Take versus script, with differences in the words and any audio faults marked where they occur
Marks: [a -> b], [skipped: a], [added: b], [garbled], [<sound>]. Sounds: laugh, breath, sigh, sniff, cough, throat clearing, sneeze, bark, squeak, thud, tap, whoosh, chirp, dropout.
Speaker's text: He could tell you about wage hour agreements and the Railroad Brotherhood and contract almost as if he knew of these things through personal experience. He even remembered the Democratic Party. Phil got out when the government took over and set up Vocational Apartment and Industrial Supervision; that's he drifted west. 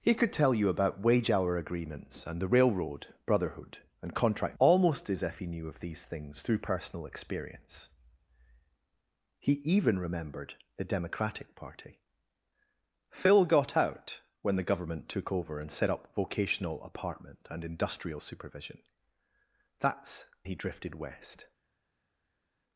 He could tell you about wage hour agreements and the Railroad Brotherhood and contract almost as if he knew of these things through personal experience. He even remembered the Democratic Party. Phil got out when the government took over and set up Vocational Apartment and Industrial Supervision; that's he drifted west.